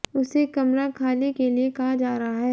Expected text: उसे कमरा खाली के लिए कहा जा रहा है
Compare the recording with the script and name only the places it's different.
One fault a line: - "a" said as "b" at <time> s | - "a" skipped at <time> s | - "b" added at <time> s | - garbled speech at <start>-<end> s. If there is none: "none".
none